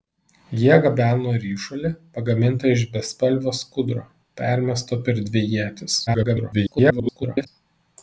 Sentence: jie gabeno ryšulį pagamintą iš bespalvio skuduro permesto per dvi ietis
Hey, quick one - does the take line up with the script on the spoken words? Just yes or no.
no